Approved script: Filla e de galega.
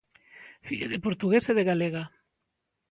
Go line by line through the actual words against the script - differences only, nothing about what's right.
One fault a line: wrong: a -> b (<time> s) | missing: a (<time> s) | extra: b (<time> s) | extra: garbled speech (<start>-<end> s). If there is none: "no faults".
extra: de portugués (0.9 s)